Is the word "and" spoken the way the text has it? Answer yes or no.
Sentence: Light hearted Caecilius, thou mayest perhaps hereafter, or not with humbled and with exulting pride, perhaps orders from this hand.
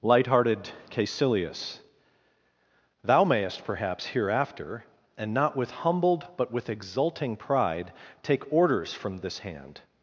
no